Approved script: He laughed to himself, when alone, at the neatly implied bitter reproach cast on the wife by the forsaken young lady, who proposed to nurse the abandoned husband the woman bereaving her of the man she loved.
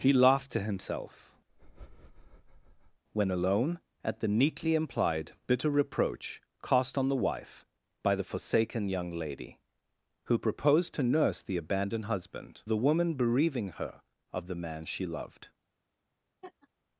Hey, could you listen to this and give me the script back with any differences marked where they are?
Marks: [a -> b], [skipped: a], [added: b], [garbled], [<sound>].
He laughed to himself, [breath] when alone, at the neatly implied bitter reproach cast on the wife by the forsaken young lady, who proposed to nurse the abandoned husband the woman bereaving her of the man she loved. [laugh]